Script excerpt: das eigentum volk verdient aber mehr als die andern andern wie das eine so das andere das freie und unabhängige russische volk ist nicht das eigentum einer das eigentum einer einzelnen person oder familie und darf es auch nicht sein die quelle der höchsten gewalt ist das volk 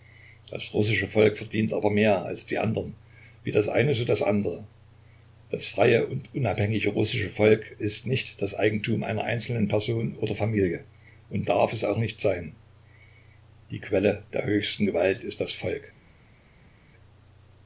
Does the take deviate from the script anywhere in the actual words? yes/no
yes